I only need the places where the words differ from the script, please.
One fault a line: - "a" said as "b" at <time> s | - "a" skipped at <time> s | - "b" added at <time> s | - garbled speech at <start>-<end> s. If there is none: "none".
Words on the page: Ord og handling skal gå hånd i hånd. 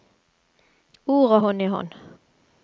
- "handling skal gå" skipped at 1.4 s